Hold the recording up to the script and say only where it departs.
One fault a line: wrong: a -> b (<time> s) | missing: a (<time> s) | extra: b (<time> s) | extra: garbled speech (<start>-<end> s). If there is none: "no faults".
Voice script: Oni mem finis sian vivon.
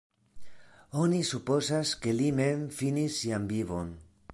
extra: supozas ke li (1.3 s)